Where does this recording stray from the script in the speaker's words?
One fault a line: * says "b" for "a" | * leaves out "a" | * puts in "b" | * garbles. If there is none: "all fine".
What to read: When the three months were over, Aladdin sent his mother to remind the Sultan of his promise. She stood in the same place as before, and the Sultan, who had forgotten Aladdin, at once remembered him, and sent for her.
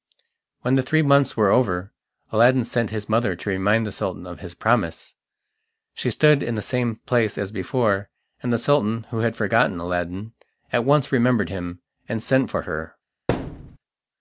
all fine